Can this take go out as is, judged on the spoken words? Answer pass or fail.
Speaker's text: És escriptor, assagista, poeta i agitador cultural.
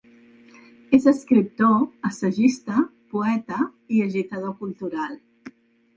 pass